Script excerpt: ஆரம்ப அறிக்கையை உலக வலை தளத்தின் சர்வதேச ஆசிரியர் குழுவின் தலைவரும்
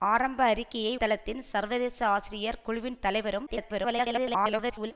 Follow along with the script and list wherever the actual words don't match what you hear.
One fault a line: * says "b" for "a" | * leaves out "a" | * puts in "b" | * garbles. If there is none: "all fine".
* leaves out "உலக வலை"
* garbles